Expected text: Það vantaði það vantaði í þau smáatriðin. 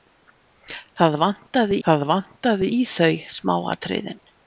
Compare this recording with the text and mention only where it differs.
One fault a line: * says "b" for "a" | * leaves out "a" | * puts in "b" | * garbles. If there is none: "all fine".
all fine